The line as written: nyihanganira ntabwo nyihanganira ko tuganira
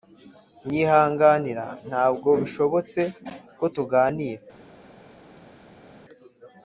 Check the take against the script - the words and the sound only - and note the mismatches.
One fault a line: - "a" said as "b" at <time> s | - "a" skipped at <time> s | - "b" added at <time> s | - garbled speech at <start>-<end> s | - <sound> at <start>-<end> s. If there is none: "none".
- "nyihanganira" said as "bishobotse" at 2.4 s